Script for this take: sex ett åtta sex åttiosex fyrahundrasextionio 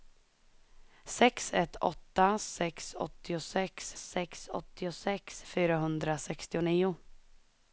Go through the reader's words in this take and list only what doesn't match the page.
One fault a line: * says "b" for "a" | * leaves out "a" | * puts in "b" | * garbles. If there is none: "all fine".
* puts in "sex åttiosex"